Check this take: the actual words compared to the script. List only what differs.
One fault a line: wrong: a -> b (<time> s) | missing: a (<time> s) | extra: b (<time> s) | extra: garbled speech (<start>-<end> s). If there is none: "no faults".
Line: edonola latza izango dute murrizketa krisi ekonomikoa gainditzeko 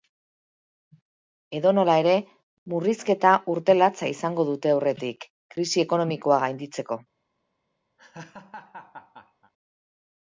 extra: ere murrizketa urte (2.0 s)
wrong: murrizketa -> aurretik (4.8 s)